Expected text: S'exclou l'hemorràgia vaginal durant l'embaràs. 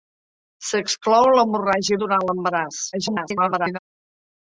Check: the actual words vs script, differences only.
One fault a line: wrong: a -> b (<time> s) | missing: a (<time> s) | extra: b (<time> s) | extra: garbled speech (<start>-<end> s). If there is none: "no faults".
missing: vaginal (2.0 s)
extra: garbled speech (2.9-3.8 s)